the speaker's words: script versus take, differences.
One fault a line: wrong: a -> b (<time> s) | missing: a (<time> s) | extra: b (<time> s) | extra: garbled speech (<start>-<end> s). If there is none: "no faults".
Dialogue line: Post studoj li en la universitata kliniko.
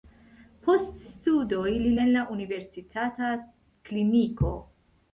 no faults